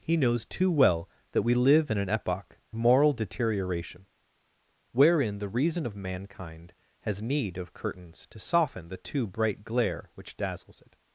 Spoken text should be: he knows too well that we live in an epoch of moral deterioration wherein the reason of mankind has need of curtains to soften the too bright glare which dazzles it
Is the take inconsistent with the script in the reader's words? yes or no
yes